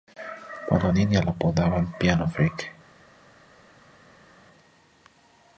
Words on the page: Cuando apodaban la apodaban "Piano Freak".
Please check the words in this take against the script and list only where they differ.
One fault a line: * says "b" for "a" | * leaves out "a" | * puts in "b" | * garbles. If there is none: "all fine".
* says "niña" for "apodaban"